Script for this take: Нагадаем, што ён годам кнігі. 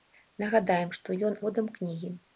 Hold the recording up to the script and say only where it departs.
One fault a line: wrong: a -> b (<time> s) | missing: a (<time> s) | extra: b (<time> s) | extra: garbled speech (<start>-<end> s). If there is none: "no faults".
no faults